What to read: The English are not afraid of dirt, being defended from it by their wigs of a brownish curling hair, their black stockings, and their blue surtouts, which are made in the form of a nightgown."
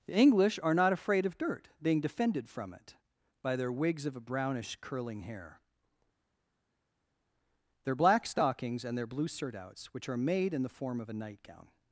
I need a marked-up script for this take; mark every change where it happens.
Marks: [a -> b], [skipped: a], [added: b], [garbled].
The English are not afraid of dirt, being defended from it by their wigs of a brownish curling hair, their black stockings, and their blue surtouts, which are made in the form of a nightgown."